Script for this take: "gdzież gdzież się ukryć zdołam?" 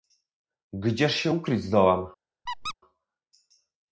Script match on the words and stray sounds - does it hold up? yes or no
no